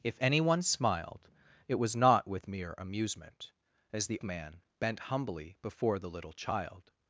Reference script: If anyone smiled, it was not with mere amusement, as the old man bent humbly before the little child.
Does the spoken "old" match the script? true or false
false